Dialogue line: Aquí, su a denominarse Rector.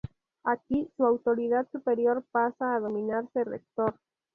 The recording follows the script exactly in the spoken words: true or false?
false